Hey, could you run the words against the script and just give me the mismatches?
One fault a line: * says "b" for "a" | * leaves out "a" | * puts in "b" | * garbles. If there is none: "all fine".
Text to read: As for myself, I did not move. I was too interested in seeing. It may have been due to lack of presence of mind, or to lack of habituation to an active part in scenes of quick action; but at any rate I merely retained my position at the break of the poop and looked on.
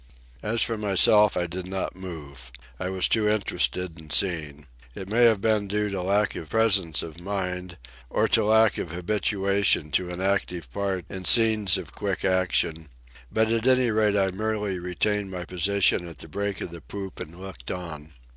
all fine